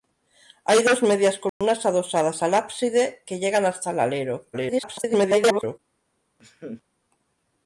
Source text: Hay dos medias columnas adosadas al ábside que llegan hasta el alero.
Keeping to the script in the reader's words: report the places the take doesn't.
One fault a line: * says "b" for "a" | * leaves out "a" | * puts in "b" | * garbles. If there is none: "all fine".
* garbles